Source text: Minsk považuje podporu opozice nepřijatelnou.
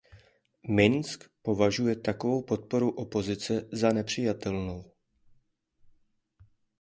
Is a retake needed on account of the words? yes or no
yes